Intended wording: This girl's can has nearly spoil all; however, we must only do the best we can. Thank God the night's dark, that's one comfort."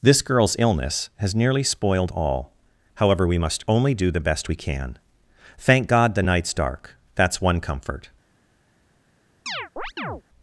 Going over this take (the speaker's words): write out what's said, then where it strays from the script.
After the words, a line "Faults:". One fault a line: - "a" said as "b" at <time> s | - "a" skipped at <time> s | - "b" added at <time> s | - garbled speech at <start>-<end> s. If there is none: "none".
This girl's illness has nearly spoiled all; however, we must only do the best we can. Thank God the night's dark, that's one comfort."
Faults:
- "can" said as "illness" at 0.6 s
- "spoil" said as "spoiled" at 1.6 s